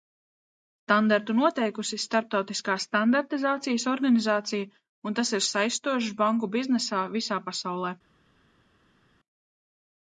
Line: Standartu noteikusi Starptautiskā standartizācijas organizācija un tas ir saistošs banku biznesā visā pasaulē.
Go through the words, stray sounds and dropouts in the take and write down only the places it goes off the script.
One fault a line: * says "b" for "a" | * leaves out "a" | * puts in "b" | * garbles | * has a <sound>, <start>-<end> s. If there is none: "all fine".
all fine